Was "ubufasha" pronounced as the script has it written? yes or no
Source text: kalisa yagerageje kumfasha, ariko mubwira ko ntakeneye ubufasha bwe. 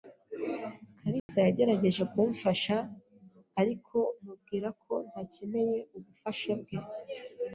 yes